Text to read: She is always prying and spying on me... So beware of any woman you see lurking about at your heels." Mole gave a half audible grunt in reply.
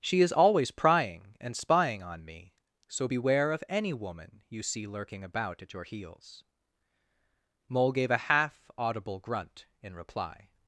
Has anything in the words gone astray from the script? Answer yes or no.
no